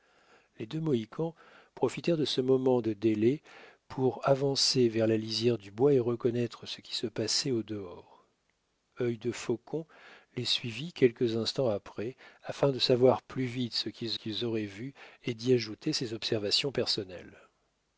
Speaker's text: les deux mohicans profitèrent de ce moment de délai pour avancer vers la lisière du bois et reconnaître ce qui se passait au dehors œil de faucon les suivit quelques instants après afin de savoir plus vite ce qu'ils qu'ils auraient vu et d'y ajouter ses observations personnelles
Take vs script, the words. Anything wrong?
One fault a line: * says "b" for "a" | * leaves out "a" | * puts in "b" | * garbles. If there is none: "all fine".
all fine